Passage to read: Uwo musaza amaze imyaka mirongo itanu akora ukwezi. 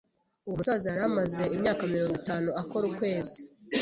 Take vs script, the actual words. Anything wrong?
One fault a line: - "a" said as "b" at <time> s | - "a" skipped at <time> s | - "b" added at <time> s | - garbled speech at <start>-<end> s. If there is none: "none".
- "yari" added at 0.9 s